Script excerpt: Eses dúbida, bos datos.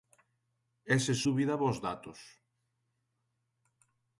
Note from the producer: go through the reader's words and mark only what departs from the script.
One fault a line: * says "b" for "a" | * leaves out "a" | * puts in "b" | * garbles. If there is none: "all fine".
all fine